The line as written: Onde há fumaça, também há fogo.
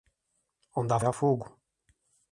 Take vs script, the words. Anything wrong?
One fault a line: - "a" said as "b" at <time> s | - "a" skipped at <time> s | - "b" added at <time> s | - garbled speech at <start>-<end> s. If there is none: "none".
- "fumaça também" skipped at 1.0 s